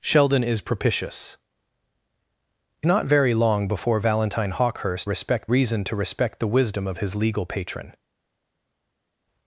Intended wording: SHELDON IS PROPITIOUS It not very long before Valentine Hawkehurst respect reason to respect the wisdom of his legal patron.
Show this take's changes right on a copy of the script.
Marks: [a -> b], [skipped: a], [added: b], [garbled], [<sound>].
SHELDON IS PROPITIOUS It not very long before Valentine Hawkehurst respect reason to respect the wisdom of his legal patron.